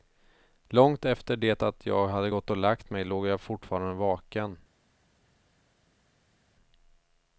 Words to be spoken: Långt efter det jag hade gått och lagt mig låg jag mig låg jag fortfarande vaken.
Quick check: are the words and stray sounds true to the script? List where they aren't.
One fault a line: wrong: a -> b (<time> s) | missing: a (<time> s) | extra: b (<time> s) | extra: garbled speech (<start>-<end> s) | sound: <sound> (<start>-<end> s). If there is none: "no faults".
extra: att (1.6 s)
missing: mig låg jag (3.4 s)